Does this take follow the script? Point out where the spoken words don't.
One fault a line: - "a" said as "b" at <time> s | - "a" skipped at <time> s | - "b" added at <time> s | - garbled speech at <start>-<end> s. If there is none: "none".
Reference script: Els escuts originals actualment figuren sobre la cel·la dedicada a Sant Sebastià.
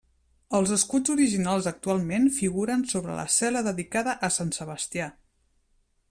none